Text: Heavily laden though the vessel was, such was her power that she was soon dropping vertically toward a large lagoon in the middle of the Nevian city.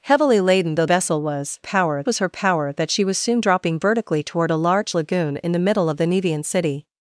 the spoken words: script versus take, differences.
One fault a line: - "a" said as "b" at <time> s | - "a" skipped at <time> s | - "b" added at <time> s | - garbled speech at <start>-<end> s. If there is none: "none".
- "the" skipped at 0.8 s
- "such" said as "power" at 1.6 s